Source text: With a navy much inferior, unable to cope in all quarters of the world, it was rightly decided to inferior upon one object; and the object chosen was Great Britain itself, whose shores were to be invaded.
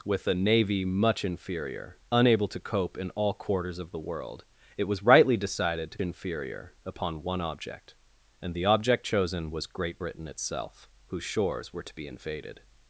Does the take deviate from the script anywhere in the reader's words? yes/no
no